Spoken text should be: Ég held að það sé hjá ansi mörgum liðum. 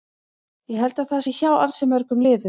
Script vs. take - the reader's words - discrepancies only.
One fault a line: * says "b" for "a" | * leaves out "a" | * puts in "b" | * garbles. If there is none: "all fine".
all fine